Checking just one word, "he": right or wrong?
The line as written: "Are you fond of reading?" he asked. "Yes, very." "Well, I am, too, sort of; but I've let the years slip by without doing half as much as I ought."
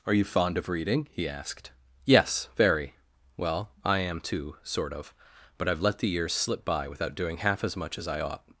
right